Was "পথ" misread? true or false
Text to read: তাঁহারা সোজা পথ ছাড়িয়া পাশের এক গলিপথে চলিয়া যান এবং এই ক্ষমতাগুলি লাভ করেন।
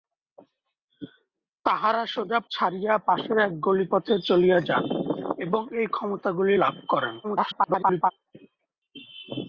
true